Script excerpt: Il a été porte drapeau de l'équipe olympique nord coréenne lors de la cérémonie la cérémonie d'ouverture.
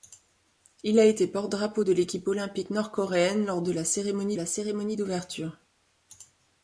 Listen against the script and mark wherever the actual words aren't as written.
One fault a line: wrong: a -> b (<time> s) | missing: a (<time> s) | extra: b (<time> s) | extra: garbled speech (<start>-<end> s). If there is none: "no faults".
no faults